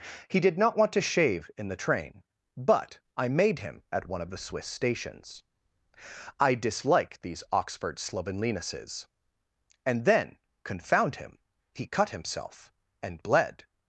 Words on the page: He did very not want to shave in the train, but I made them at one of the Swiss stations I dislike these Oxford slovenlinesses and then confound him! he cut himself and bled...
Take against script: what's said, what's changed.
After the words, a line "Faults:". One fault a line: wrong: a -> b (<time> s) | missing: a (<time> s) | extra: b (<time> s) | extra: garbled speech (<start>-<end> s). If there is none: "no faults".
He did not want to shave in the train, but I made him at one of the Swiss stations I dislike these Oxford slovenlinesses and then confound him! he cut himself and bled...
Faults:
missing: very (0.6 s)
wrong: them -> him (3.6 s)